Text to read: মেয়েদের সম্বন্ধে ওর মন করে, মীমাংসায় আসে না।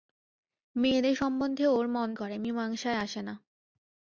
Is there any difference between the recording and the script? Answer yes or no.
no